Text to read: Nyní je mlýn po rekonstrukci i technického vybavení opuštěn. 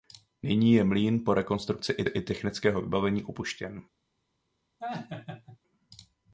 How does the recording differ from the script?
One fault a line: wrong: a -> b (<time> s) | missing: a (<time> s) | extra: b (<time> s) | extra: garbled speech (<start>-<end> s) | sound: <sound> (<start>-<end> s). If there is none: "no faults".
extra: i (2.1 s)
sound: laugh (4.8-5.6 s)